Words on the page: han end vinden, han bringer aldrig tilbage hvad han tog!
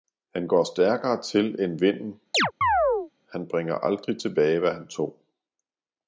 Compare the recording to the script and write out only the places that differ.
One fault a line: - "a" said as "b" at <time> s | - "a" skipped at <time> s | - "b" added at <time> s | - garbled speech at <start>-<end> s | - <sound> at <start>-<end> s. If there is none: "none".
- "går stærkere til" added at 0.5 s
- chirp at 2.3-3.1 s